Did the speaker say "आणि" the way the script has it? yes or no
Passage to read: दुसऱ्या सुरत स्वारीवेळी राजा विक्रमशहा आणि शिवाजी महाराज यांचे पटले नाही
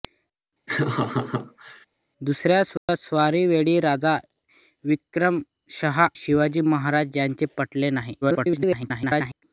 no